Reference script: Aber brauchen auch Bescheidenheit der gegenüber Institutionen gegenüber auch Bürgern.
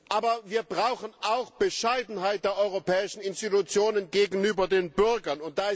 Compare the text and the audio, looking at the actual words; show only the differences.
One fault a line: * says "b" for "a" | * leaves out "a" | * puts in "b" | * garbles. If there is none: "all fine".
* puts in "wir"
* says "europäischen" for "gegenüber"
* says "den" for "auch"